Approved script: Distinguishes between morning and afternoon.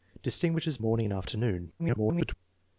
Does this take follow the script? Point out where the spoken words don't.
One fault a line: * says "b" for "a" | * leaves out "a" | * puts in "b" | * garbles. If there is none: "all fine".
* leaves out "between"
* garbles